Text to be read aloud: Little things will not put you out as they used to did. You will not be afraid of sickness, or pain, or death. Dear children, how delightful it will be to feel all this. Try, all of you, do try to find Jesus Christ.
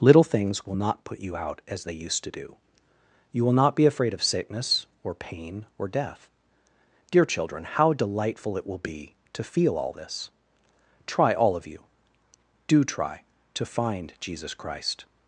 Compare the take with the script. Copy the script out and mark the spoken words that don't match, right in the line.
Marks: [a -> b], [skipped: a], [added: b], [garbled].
Little things will not put you out as they used to [did. -> do] You will not be afraid of sickness, or pain, or death. Dear children, how delightful it will be to feel all this. Try, all of you, do try to find Jesus Christ.